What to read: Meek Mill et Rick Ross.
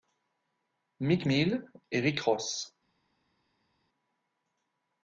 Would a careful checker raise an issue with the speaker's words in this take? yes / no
no